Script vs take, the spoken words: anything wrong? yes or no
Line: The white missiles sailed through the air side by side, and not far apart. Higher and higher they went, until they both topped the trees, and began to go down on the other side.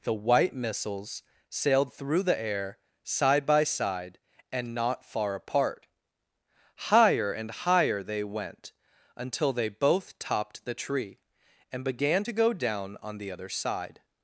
yes